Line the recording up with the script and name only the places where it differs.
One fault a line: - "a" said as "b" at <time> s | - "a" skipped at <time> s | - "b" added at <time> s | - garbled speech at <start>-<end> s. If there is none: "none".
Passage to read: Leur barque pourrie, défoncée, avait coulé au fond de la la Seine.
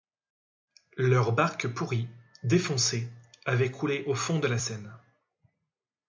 - "la" skipped at 4.6 s